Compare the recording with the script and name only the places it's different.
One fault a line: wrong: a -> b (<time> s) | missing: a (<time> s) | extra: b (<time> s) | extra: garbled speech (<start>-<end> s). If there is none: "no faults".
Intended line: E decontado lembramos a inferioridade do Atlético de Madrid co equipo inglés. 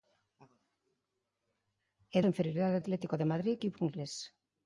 missing: decontado lembramos (2.2 s)
missing: do (2.8 s)
missing: co (3.6 s)